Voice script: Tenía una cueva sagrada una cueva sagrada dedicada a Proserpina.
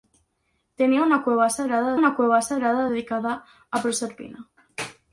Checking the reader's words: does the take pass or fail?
pass